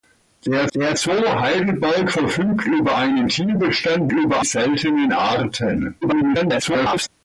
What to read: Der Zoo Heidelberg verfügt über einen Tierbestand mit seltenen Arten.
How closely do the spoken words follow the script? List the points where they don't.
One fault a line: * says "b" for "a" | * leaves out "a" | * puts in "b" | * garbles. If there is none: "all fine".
* puts in "der"
* says "über" for "mit"
* garbles